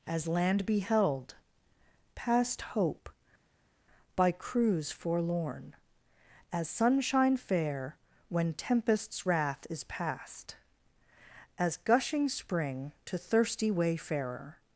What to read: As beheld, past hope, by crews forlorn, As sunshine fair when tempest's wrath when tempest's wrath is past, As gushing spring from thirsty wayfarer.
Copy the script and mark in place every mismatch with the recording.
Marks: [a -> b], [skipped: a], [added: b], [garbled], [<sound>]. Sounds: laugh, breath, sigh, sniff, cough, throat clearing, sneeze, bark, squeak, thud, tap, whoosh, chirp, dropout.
As [added: land] beheld, past hope, by crews forlorn, As sunshine fair when tempest's wrath [skipped: when tempest's wrath] is past, As gushing spring [from -> to] thirsty wayfarer.